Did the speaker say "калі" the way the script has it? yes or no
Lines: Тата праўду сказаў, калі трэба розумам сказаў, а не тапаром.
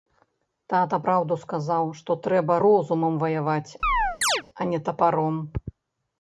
no